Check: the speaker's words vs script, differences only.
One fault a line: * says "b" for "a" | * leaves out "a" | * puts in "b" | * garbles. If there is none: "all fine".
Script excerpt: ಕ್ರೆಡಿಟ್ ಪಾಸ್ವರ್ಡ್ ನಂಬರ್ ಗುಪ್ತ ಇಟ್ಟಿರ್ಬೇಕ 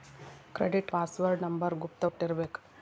all fine